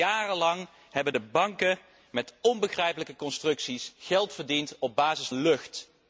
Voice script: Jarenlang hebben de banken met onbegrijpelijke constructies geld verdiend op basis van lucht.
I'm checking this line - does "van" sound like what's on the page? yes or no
no